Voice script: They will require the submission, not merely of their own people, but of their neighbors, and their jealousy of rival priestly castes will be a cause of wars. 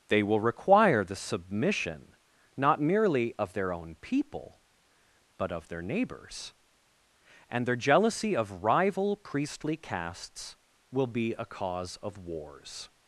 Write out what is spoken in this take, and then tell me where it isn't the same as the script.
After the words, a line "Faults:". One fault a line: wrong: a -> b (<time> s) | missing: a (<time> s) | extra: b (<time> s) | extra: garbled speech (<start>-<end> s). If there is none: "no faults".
They will require the submission, not merely of their own people, but of their neighbors, and their jealousy of rival priestly castes will be a cause of wars.
Faults:
no faults